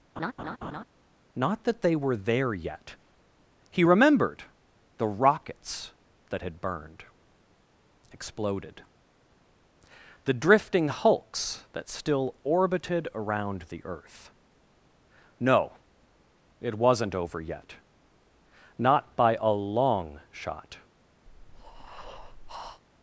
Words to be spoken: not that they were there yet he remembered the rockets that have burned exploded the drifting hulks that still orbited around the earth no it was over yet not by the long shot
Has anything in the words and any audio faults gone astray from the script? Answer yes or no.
yes